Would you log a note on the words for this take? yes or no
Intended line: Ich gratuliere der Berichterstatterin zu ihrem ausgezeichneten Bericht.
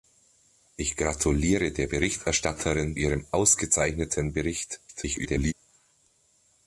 yes